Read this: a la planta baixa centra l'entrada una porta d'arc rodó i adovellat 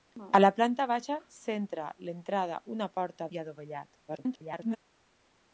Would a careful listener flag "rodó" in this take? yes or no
yes